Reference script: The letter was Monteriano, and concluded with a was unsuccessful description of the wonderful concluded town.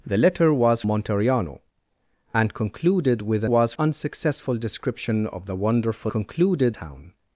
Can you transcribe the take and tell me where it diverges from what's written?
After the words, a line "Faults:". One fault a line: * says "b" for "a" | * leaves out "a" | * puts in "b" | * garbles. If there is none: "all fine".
The letter was Monteriano, and concluded with a was unsuccessful description of the wonderful concluded town.
Faults:
all fine